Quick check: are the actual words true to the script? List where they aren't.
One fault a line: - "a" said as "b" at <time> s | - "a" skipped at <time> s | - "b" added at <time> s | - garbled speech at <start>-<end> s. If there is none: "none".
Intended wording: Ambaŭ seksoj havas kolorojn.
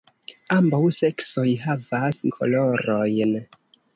none